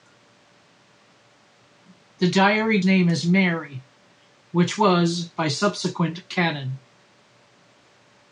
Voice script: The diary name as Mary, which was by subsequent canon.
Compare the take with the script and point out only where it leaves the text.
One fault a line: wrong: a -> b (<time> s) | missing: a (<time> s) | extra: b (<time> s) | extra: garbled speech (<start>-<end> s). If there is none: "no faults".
no faults